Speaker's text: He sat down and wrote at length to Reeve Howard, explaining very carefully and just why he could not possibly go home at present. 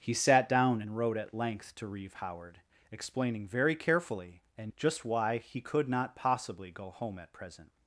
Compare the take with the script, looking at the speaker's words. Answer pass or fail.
pass